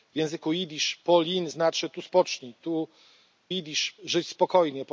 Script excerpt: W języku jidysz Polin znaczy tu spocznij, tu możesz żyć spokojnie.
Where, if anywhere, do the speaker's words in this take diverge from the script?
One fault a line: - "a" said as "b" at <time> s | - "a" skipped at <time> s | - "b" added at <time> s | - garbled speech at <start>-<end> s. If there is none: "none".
- "możesz" said as "jidysz" at 3.5 s